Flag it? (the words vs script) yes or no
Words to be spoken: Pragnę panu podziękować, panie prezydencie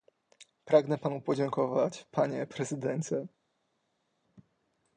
no